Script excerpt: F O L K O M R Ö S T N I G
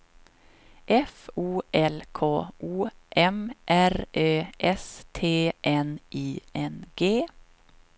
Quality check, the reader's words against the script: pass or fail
fail